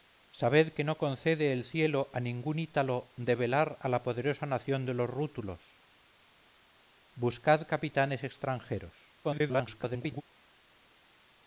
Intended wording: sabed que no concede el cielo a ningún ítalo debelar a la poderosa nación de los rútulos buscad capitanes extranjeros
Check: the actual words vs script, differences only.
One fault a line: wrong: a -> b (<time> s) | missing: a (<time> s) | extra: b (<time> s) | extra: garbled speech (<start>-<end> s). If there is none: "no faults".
extra: garbled speech (9.2-10.2 s)